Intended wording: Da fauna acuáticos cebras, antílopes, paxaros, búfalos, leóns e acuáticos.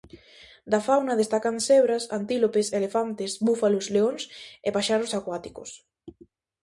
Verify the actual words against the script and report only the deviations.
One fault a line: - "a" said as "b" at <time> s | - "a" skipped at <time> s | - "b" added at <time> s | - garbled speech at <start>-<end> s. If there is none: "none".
- "acuáticos" said as "destacan" at 1.2 s
- "paxaros" said as "elefantes" at 2.8 s
- "paxaros" added at 4.8 s